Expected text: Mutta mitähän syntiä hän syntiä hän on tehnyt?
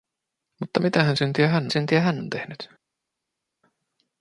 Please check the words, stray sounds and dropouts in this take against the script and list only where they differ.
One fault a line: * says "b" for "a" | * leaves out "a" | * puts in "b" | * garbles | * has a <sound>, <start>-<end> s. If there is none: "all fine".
all fine